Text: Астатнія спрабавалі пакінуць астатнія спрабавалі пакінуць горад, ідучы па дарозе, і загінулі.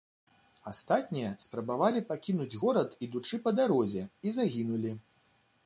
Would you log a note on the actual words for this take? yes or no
yes